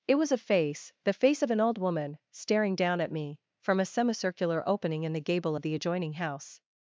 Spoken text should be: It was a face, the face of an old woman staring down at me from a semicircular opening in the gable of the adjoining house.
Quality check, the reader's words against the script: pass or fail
pass